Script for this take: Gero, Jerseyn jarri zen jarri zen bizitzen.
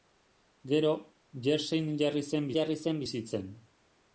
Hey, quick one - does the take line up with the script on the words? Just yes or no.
yes